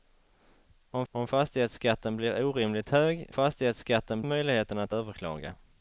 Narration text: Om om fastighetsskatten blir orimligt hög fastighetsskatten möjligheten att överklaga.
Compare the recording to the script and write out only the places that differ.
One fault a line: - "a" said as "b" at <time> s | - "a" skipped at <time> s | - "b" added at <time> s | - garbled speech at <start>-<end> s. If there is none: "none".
none